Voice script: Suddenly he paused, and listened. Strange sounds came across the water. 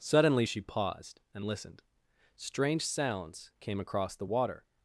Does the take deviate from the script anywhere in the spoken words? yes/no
yes